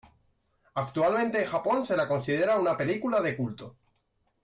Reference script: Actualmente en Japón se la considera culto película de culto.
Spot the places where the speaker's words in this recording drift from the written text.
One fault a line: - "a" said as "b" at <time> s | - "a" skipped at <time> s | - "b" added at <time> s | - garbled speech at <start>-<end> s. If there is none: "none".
- "culto" said as "una" at 2.6 s